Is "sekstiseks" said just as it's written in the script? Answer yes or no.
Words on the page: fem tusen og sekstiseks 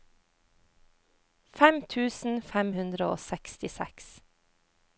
yes